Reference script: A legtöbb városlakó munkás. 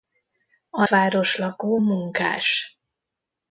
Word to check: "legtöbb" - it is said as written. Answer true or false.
false